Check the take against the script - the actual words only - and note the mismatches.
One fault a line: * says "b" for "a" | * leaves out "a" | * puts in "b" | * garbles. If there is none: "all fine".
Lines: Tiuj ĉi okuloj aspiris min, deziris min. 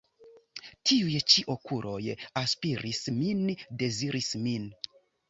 all fine